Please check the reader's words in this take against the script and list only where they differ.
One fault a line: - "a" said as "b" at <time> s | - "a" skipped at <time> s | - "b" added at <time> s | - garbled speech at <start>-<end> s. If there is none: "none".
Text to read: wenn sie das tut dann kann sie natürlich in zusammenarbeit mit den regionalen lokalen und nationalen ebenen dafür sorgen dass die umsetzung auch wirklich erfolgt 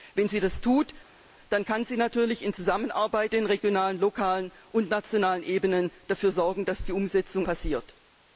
- "mit" skipped at 3.3 s
- "auch wirklich" skipped at 7.5 s